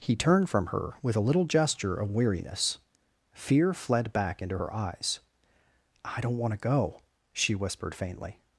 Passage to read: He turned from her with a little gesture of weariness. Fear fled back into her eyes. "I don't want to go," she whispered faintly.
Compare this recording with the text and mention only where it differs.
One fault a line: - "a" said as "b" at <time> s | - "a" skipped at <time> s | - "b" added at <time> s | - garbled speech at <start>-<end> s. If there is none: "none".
none